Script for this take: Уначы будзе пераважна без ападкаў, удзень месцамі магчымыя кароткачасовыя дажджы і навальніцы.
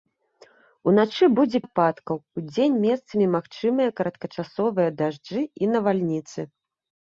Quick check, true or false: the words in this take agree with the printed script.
false